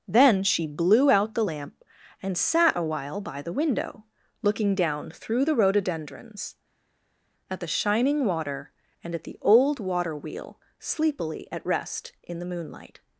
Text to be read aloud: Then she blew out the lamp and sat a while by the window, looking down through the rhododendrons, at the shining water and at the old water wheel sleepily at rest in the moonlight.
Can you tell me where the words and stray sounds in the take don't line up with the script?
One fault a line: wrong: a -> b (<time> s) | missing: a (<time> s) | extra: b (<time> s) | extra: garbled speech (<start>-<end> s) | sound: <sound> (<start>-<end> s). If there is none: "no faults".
no faults